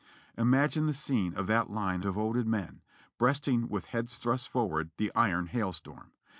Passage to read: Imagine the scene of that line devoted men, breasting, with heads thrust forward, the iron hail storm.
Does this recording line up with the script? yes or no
yes